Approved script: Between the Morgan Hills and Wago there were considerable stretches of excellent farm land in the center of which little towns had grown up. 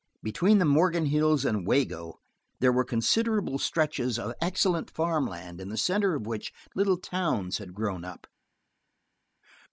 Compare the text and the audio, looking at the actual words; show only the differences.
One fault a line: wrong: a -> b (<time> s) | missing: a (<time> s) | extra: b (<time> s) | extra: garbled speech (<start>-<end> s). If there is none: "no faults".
no faults